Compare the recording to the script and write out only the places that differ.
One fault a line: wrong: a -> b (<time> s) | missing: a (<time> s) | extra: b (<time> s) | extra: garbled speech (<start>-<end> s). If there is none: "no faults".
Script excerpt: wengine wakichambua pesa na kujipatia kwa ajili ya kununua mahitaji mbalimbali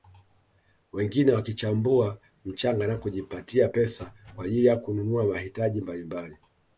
wrong: pesa -> mchanga (2.5 s)
extra: pesa (3.7 s)